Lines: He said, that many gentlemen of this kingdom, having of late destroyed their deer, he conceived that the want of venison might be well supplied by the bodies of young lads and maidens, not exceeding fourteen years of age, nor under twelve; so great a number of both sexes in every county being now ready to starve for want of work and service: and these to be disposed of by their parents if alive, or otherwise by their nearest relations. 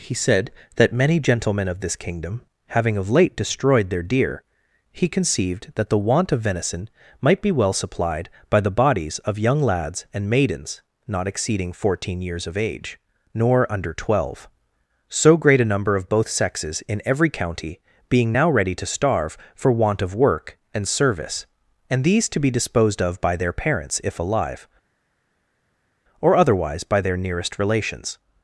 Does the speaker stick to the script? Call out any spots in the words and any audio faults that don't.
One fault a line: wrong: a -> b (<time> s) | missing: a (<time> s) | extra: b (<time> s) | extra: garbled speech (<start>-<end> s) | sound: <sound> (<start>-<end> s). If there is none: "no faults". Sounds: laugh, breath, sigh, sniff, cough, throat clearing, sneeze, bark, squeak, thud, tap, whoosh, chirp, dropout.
no faults